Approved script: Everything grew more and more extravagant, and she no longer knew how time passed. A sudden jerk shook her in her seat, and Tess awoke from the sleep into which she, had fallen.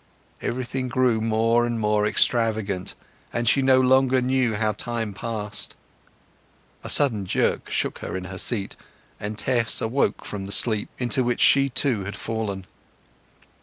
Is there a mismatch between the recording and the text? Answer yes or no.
yes